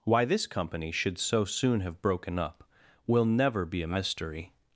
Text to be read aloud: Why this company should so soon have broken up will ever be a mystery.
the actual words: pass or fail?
fail